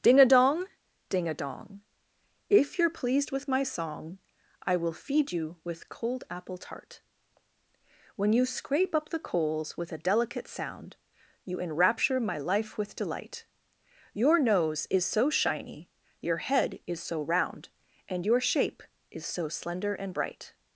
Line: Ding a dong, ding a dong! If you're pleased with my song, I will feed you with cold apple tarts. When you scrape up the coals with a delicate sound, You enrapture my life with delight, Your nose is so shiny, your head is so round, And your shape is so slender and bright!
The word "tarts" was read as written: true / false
false